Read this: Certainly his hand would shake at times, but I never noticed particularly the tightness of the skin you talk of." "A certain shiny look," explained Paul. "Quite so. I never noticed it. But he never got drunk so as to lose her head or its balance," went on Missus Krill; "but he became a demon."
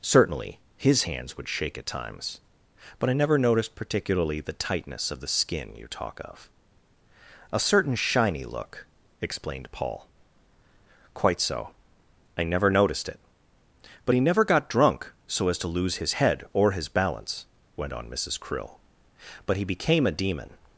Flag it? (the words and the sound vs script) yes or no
yes